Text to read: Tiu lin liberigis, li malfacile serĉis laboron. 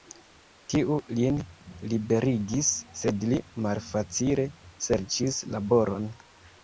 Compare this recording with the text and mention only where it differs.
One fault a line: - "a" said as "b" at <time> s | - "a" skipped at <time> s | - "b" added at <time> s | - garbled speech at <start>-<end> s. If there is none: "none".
- "sed" added at 3.0 s